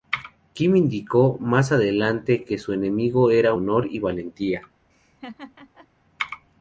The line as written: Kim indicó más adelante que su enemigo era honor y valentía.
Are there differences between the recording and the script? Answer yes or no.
no